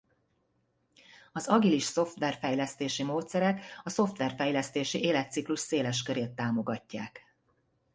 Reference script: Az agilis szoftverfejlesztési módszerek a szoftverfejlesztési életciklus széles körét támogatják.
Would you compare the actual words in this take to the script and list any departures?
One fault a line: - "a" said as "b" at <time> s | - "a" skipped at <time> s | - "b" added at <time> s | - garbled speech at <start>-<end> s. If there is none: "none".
none